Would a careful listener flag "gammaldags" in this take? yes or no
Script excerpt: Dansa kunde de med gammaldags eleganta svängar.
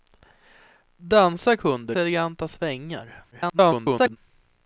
yes